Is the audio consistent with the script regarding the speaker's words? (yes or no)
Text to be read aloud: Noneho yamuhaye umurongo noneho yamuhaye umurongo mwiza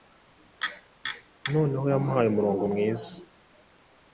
no